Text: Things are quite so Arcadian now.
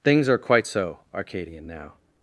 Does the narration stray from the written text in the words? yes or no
no